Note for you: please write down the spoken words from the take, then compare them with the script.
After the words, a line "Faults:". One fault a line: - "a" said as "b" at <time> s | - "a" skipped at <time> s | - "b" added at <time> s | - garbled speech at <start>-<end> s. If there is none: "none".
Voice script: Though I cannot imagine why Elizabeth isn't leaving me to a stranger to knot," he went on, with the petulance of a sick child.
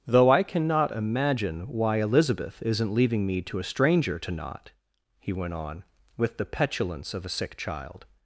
Though I cannot imagine why Elizabeth isn't leaving me to a stranger to knot," he went on, with the petulance of a sick child.
Faults:
none